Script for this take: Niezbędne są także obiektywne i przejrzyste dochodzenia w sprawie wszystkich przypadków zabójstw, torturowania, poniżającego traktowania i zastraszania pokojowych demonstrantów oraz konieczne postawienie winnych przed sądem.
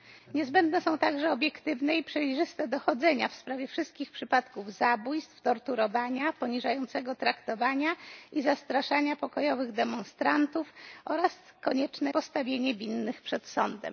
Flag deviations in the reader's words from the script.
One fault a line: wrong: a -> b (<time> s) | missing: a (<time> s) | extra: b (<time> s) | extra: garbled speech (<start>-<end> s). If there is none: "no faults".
no faults